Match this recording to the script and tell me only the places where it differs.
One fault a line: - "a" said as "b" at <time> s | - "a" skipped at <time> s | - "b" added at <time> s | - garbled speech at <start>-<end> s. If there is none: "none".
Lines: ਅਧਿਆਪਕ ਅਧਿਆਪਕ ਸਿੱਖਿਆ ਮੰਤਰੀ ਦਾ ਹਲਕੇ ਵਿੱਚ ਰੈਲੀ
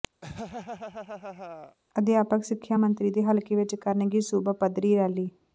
- "ਅਧਿਆਪਕ" skipped at 2.4 s
- "ਦਾ" said as "ਦੇ" at 3.1 s
- "ਕਰਨਗੇ ਸੂਬਾ ਪੱਧਰੀ" added at 3.8 s